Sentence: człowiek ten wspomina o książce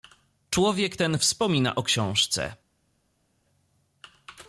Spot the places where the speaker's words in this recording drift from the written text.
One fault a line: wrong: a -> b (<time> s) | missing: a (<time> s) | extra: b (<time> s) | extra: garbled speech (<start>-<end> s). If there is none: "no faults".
no faults